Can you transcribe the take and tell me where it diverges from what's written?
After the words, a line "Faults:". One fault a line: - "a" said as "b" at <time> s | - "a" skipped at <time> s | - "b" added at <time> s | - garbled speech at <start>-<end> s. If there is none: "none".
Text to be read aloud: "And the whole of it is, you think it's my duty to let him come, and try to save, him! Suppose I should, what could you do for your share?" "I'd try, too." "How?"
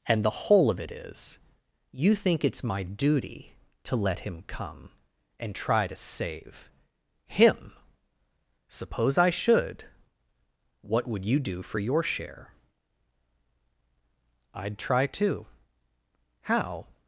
"And the whole of it is, you think it's my duty to let him come, and try to save, him! Suppose I should, what would you do for your share?" "I'd try, too." "How?"
Faults:
- "could" said as "would" at 11.1 s